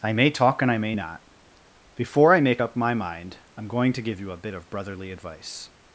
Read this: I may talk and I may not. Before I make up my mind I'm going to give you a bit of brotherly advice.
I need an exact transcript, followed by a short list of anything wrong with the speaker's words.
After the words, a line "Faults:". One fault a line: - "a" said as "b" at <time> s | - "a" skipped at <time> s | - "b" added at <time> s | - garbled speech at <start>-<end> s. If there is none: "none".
I may talk and I may not. Before I make up my mind I'm going to give you a bit of brotherly advice.
Faults:
none